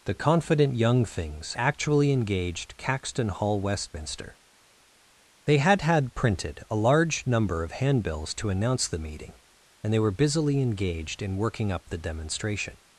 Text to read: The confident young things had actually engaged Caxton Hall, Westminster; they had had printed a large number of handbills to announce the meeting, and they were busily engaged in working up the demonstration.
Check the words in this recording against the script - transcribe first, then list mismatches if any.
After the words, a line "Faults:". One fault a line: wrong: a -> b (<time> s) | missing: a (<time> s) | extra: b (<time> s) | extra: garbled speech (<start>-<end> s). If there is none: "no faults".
The confident young things actually engaged Caxton Hall, Westminster; they had had printed a large number of handbills to announce the meeting, and they were busily engaged in working up the demonstration.
Faults:
missing: had (1.5 s)